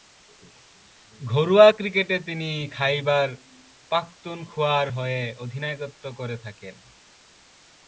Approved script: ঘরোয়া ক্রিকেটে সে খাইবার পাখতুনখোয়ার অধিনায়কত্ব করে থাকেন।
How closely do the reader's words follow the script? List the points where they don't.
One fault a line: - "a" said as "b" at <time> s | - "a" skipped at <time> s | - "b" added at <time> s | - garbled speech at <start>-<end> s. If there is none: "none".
- "সে" said as "তিনি" at 2.2 s
- "হয়ে" added at 4.9 s